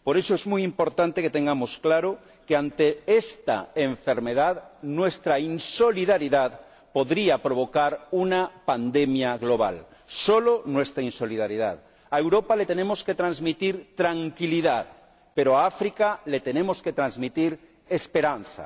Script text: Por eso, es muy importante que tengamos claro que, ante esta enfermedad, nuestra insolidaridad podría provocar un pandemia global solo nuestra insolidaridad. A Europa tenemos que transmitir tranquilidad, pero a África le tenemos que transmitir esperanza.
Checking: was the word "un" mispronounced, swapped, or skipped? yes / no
yes